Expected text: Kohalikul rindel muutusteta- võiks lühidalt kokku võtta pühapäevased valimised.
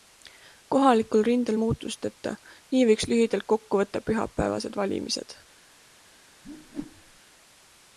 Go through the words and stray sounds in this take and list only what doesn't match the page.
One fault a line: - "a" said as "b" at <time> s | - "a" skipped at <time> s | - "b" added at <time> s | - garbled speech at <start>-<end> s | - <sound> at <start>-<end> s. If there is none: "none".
- "nii" added at 2.7 s
- whoosh at 6.4-7.2 s